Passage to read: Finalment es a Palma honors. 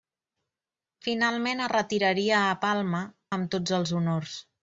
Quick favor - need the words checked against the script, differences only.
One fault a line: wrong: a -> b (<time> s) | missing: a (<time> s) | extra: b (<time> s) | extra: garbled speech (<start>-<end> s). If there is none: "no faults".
extra: retiraria (1.7 s)
extra: amb tots els (3.4 s)